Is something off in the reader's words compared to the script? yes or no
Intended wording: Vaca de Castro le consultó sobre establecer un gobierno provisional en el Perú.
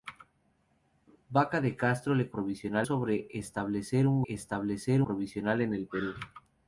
yes